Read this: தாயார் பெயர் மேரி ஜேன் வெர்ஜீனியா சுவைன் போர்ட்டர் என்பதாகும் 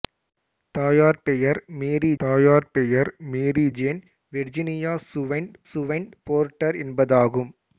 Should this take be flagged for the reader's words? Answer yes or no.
yes